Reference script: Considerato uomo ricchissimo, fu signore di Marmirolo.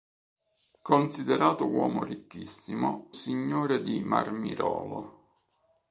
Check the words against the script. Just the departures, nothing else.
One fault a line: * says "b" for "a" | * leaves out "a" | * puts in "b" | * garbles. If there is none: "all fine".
* leaves out "fu"